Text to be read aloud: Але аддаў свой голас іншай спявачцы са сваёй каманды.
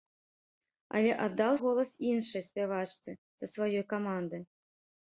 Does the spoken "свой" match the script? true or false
false